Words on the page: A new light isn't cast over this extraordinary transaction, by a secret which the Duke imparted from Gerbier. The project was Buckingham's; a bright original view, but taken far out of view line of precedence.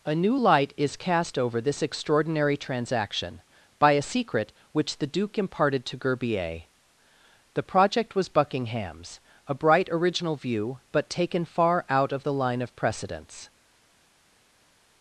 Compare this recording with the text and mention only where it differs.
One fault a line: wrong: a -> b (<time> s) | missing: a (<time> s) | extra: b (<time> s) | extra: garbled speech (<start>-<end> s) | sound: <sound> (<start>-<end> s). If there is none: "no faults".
wrong: isn't -> is (0.8 s)
wrong: from -> to (5.9 s)
wrong: view -> the (12.2 s)